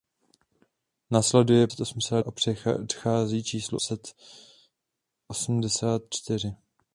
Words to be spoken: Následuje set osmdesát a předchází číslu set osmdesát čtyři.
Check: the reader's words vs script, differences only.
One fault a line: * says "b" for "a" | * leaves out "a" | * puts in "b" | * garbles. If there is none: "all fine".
all fine